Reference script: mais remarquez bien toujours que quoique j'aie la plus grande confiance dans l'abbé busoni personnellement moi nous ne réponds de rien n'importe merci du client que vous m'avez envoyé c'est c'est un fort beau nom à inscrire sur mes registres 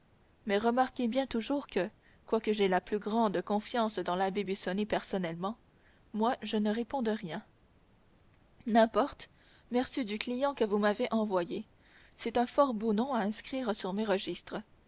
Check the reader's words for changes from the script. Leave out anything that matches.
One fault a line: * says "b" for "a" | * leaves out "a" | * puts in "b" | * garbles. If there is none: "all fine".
* says "je" for "nous"
* leaves out "c'est"